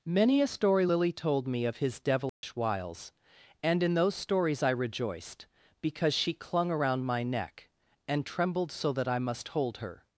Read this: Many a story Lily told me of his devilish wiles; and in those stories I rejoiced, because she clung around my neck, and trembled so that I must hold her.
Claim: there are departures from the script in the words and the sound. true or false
true